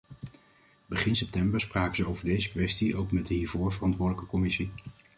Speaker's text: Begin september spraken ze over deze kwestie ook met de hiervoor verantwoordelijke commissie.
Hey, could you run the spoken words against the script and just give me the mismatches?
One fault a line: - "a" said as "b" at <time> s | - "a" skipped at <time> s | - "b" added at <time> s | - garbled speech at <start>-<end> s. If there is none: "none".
none